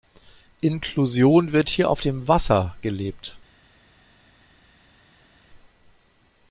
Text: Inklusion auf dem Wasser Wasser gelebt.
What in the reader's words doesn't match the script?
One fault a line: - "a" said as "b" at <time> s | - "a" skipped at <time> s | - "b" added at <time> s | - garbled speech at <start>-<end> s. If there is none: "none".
- "wird hier" added at 1.5 s
- "Wasser" skipped at 2.7 s